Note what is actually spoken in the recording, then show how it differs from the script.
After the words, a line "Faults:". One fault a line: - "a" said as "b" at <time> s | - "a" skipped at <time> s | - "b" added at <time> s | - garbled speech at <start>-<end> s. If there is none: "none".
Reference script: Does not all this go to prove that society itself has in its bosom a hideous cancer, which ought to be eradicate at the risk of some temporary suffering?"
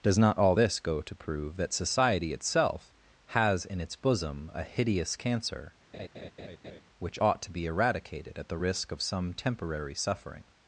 Does not all this go to prove that society itself has in its bosom a hideous cancer, which ought to be eradicated at the risk of some temporary suffering?"
Faults:
- "eradicate" said as "eradicated" at 7.7 s